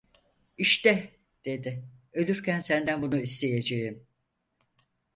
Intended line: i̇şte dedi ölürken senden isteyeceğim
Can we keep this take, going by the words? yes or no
no